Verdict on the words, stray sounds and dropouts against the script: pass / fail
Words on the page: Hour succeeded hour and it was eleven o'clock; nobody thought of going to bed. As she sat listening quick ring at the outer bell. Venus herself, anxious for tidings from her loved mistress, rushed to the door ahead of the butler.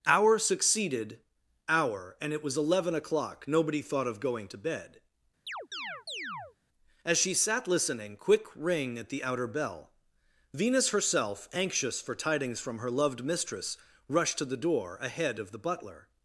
fail